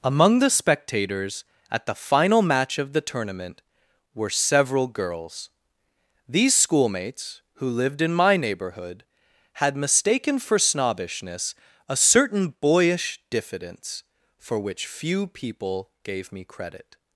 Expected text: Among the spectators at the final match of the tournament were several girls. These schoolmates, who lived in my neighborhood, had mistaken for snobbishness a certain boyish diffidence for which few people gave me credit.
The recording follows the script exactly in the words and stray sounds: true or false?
true